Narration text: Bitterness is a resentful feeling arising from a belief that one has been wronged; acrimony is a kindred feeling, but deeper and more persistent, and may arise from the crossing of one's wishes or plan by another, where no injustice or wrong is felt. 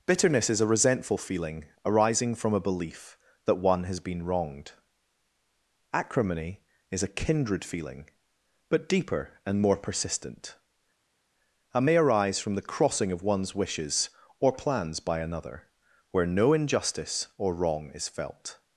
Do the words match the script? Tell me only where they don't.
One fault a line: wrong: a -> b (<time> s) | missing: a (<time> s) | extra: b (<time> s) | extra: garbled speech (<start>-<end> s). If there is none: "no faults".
wrong: plan -> plans (14.5 s)